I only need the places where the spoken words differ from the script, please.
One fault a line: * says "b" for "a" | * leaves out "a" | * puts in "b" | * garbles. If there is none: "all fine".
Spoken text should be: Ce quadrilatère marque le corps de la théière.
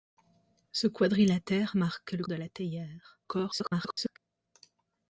* leaves out "corps"
* garbles